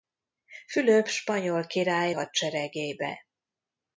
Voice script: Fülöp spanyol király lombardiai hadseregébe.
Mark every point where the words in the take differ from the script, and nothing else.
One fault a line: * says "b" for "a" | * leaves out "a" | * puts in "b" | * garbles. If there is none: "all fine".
* leaves out "lombardiai"